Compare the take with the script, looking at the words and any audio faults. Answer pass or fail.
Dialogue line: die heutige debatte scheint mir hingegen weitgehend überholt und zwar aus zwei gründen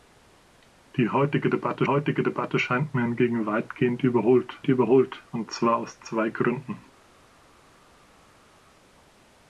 fail